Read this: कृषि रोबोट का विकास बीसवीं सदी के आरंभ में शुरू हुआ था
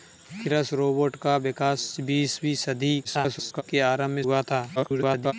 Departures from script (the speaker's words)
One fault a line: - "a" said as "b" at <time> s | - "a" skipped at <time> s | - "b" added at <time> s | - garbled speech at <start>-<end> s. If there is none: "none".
- garbled speech at 3.0-3.6 s
- "शुरू" skipped at 4.2 s
- garbled speech at 4.8-5.3 s